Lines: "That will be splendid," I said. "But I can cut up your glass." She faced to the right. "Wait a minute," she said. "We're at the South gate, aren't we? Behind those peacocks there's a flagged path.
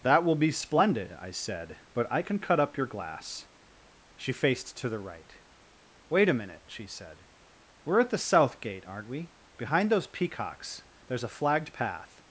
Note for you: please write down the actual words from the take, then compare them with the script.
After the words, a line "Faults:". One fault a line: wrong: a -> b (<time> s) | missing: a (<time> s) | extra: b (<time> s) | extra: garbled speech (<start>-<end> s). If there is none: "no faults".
"That will be splendid," I said. "But I can cut up your glass." She faced to the right. "Wait a minute," she said. "We're at the South gate, aren't we? Behind those peacocks there's a flagged path.
Faults:
no faults